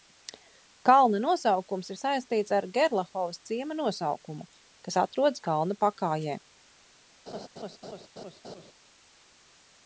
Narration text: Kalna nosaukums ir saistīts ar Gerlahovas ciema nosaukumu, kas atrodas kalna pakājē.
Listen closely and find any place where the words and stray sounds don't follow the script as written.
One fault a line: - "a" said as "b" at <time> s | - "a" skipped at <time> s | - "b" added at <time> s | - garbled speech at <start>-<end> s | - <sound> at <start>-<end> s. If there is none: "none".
- laugh at 7.3-8.7 s